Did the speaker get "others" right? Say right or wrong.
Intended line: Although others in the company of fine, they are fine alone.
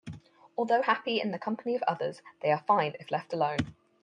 wrong